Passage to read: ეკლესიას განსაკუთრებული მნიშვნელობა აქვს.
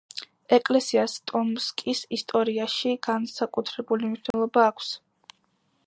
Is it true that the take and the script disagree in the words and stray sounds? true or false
true